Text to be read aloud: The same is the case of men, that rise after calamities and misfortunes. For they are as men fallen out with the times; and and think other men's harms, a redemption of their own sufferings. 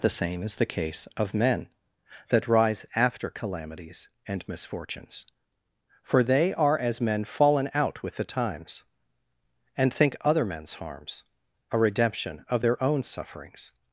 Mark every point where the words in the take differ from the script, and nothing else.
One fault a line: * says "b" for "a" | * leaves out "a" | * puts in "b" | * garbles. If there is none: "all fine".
* leaves out "and"